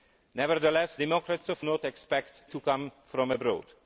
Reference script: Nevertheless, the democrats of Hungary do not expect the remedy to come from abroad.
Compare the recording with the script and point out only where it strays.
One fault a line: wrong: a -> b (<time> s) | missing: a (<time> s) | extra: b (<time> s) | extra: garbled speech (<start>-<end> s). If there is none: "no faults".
missing: the (1.0 s)
missing: Hungary do (1.6 s)
missing: the remedy (2.4 s)